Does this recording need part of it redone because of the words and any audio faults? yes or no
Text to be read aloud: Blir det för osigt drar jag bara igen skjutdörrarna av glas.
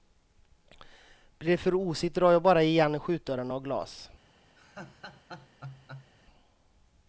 yes